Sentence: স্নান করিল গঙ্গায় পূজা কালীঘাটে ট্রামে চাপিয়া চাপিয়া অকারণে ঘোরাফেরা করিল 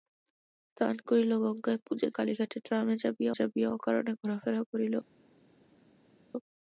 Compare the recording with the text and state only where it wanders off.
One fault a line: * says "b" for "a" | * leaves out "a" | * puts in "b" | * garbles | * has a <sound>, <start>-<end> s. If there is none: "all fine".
all fine